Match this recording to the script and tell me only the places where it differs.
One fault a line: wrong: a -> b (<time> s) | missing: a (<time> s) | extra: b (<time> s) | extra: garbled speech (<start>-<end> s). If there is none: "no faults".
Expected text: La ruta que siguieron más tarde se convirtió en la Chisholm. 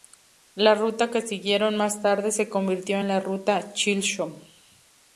extra: Ruta (3.2 s)